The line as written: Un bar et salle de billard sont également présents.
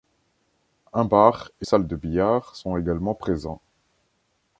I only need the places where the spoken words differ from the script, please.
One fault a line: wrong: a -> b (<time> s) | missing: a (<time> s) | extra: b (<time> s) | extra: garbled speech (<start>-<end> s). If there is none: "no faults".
no faults